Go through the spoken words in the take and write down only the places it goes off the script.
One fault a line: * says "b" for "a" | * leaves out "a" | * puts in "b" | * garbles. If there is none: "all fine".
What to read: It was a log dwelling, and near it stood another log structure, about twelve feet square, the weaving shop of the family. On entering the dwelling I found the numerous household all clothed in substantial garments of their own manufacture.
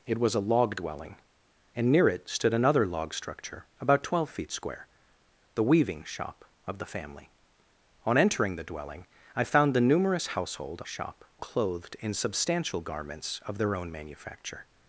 * says "shop" for "all"